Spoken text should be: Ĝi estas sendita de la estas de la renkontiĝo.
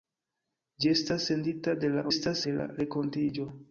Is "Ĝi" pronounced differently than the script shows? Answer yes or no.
no